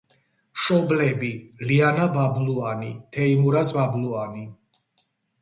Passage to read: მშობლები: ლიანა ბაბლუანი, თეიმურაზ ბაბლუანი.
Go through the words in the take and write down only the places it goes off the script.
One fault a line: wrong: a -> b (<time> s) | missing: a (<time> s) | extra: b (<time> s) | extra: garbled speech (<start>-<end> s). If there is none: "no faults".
no faults